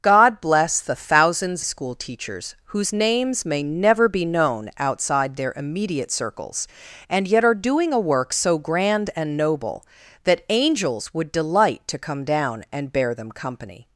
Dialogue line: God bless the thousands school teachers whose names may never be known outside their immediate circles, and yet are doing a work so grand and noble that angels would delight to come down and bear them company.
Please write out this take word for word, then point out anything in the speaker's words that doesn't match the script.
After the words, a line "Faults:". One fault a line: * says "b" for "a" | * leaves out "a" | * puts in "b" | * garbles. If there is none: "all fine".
God bless the thousands school teachers whose names may never be known outside their immediate circles, and yet are doing a work so grand and noble that angels would delight to come down and bear them company.
Faults:
all fine